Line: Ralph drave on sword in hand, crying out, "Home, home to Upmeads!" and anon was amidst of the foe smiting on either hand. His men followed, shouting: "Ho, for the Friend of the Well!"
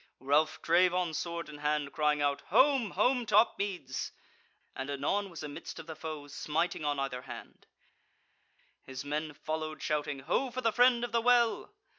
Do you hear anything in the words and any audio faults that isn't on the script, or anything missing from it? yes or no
no